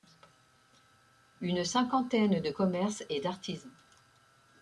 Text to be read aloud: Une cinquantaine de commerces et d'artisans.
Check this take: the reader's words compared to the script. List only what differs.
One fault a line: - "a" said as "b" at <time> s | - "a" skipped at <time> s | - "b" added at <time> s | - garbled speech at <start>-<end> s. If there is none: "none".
none